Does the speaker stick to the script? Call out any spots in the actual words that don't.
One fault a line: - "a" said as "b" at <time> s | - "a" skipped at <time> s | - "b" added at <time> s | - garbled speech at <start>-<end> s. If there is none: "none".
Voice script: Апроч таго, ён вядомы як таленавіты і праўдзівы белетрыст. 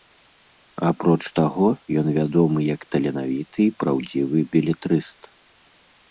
none